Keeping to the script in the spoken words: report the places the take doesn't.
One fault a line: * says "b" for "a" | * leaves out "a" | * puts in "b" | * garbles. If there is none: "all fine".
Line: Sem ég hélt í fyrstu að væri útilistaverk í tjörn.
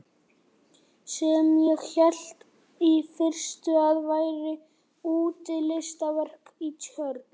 all fine